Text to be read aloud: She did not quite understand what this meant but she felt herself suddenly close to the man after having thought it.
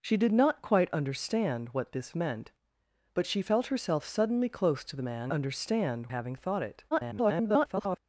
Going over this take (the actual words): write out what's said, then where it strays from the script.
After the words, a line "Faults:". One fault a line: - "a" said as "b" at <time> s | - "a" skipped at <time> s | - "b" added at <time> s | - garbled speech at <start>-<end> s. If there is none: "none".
She did not quite understand what this meant but she felt herself suddenly close to the man understand having thought it. [garbled]
Faults:
- "after" said as "understand" at 5.3 s
- garbled speech at 6.9-8.0 s